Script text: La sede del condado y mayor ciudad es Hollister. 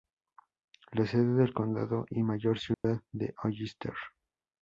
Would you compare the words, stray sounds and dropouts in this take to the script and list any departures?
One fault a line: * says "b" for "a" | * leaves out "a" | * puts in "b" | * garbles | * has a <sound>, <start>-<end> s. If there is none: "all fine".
* has a dropout, 2.7-2.8 s